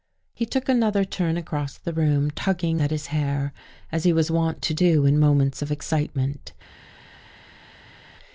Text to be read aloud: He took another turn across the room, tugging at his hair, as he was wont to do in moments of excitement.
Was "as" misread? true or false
false